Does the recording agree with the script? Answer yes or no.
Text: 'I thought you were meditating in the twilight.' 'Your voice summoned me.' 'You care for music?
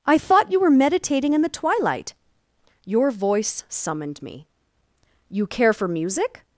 yes